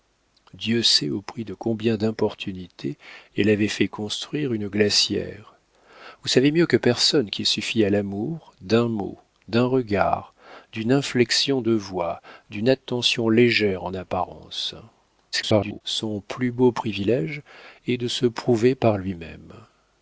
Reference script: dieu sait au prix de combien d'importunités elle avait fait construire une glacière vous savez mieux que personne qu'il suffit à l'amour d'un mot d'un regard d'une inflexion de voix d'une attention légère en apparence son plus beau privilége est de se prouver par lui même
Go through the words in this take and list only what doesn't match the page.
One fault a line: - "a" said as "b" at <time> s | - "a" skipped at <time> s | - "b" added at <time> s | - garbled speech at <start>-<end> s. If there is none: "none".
- garbled speech at 15.3-15.8 s